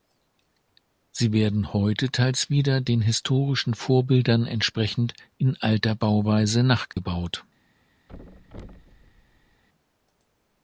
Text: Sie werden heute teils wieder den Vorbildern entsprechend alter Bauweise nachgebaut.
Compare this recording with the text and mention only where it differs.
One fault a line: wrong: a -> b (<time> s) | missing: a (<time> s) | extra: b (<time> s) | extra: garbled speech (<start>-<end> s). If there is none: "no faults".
extra: historischen (3.0 s)
extra: in (5.4 s)